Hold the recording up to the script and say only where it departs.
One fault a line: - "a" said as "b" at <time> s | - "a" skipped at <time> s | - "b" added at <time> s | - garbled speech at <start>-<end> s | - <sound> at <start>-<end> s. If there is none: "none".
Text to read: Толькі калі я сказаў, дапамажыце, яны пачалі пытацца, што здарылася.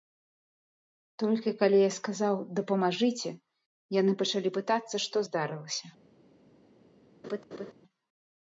- laugh at 7.2-7.7 s